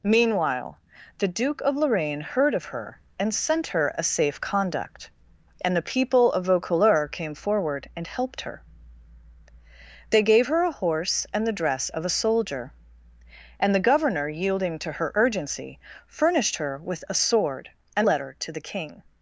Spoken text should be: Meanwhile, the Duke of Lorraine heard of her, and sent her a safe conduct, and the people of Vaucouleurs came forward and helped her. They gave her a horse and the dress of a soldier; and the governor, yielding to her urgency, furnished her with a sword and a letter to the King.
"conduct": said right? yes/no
yes